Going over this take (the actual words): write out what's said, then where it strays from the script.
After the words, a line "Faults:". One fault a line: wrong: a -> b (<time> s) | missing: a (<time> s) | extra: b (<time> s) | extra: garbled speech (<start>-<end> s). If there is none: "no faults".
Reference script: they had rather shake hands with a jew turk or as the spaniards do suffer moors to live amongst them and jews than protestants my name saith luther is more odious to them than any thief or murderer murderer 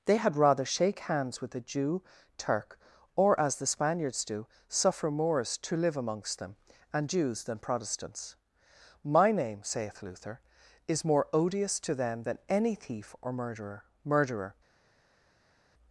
they had rather shake hands with a jew turk or as the spaniards do suffer moors to live amongst them and jews than protestants my name saith luther is more odious to them than any thief or murderer murderer
Faults:
no faults